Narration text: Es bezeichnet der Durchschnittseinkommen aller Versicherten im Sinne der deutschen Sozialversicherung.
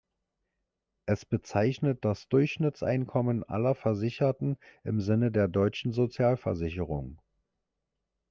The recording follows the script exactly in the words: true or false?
false